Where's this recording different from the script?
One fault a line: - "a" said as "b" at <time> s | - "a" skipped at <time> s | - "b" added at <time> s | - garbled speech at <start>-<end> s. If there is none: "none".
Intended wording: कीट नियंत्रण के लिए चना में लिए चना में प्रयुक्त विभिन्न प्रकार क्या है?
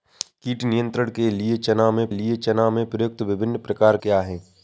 none